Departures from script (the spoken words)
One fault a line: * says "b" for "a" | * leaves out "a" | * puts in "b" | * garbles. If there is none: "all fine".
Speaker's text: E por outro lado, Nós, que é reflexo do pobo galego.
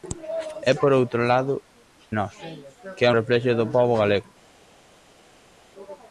all fine